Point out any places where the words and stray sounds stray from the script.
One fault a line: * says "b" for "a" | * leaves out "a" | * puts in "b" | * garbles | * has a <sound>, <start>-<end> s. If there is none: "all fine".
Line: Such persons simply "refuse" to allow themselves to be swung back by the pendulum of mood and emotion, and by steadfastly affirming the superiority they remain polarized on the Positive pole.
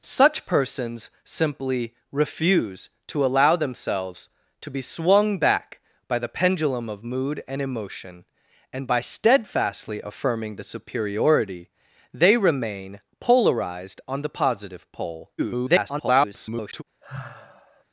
* garbles
* has a sigh, 17.0-17.8 s